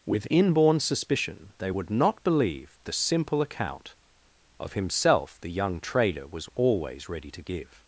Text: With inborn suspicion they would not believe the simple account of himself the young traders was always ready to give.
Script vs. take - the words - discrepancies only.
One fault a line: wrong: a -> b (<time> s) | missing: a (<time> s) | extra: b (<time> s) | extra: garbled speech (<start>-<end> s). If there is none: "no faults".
wrong: traders -> trader (5.8 s)